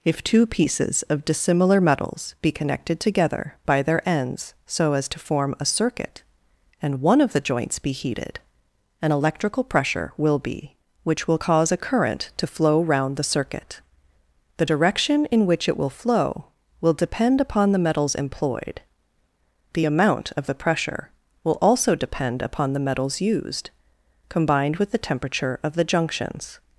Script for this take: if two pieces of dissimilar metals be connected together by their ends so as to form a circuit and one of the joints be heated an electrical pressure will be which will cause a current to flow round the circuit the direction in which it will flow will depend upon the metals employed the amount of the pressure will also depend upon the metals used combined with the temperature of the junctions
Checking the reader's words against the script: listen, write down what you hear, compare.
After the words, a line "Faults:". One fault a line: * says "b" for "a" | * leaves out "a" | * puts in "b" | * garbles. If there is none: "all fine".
if two pieces of dissimilar metals be connected together by their ends so as to form a circuit and one of the joints be heated an electrical pressure will be which will cause a current to flow round the circuit the direction in which it will flow will depend upon the metals employed the amount of the pressure will also depend upon the metals used combined with the temperature of the junctions
Faults:
all fine